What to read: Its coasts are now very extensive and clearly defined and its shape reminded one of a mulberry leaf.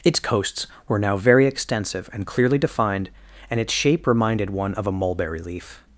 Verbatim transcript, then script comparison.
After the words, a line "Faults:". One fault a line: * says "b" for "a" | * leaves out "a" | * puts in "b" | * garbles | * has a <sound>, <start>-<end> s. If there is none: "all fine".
Its coasts were now very extensive and clearly defined and its shape reminded one of a mulberry leaf.
Faults:
* says "were" for "are"